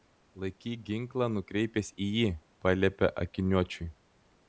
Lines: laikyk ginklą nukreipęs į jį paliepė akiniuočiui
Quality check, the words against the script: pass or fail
pass